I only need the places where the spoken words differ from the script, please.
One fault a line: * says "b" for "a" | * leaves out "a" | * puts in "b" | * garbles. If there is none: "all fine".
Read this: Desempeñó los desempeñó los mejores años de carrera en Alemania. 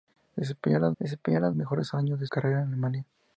all fine